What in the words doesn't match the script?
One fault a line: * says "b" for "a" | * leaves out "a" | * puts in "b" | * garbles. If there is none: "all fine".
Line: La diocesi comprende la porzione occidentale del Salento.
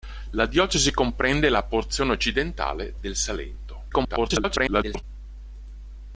* garbles